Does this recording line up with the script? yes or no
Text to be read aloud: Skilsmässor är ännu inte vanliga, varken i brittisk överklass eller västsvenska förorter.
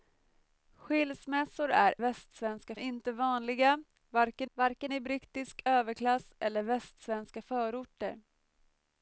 no